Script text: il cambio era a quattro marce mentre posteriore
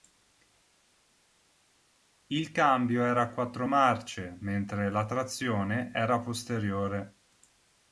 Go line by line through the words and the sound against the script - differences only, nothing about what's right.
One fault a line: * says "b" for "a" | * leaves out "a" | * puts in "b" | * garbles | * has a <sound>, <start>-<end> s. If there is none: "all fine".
* puts in "la trazione era"